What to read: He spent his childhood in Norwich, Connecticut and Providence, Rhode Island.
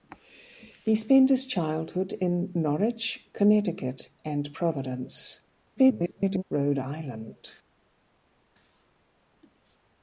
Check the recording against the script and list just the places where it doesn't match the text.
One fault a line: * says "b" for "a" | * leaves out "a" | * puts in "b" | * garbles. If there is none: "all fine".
* garbles